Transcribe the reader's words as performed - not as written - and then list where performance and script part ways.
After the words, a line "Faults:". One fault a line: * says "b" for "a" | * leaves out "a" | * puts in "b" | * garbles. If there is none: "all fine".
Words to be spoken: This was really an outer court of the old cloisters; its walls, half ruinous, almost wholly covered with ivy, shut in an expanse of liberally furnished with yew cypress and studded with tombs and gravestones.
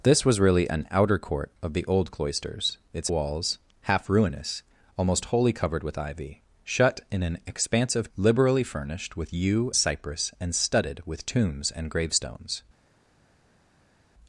This was really an outer court of the old cloisters; its walls, half ruinous, almost wholly covered with ivy, shut in an expanse of liberally furnished with yew cypress and studded with tombs and gravestones.
Faults:
all fine